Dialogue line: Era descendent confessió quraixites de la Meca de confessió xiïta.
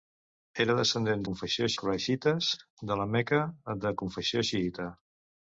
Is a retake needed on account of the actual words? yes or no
no